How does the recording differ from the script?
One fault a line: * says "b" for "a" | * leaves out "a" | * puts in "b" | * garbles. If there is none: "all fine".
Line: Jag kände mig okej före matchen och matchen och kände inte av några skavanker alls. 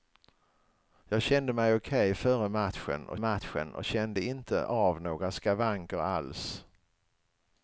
all fine